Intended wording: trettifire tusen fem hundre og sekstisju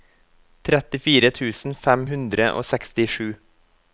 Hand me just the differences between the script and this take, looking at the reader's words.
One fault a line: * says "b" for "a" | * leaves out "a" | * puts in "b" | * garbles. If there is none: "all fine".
all fine